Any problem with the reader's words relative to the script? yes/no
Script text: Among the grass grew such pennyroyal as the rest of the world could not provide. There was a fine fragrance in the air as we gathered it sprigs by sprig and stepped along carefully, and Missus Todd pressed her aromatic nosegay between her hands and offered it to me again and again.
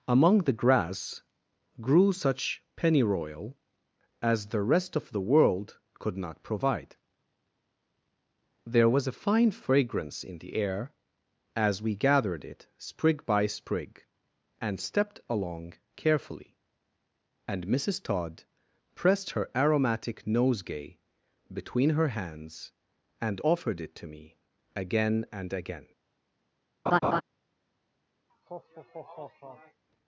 yes